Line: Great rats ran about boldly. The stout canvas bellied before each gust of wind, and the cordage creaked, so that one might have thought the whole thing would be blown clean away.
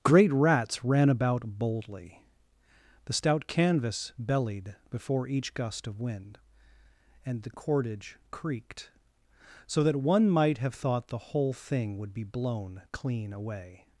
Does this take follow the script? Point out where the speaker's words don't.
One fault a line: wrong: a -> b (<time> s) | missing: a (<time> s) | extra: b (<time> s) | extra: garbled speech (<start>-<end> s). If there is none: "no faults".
no faults